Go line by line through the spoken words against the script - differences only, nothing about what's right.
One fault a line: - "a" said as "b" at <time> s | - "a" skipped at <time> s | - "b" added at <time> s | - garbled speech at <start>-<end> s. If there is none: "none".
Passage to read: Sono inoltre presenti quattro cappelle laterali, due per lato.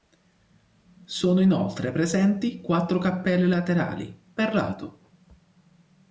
- "due" skipped at 4.2 s